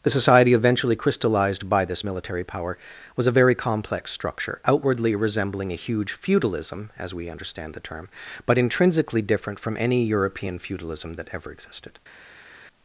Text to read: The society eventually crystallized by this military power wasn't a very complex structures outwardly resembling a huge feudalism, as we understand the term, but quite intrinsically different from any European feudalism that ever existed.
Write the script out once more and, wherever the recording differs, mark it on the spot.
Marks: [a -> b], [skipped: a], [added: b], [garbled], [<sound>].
The society eventually crystallized by this military power [wasn't -> was] a very complex [structures -> structure] outwardly resembling a huge feudalism, as we understand the term, but [skipped: quite] intrinsically different from any European feudalism that ever existed.